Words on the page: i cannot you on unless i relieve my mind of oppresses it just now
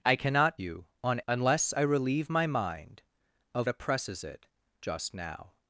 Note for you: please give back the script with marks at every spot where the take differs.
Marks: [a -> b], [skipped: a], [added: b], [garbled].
i cannot you on unless i relieve my mind of oppresses it just now